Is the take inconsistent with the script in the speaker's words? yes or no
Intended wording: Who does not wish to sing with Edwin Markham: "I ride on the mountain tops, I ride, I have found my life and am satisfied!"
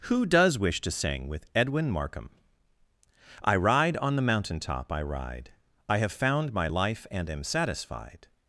yes